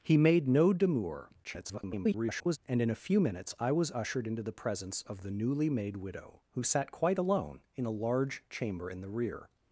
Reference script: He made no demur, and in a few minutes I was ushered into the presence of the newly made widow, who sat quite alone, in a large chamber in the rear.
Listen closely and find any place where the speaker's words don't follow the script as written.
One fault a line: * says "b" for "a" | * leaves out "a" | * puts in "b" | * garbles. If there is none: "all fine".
* garbles